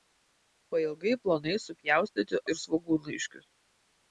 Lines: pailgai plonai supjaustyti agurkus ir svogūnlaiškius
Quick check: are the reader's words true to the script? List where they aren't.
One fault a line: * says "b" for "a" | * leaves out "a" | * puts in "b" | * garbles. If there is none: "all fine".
* leaves out "agurkus"